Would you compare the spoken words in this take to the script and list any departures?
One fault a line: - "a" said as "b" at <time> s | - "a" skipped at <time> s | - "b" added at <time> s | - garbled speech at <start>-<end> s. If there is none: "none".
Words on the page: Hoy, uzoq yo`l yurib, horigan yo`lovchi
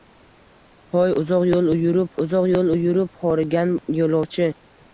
- "uzoq yo`l yurib" added at 2.3 s